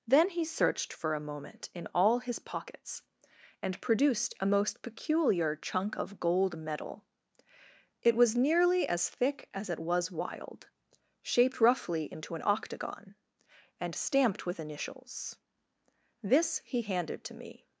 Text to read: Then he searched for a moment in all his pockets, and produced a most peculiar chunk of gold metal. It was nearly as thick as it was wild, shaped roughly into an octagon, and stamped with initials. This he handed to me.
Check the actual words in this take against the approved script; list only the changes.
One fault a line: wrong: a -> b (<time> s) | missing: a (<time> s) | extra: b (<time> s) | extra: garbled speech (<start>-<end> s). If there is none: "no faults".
no faults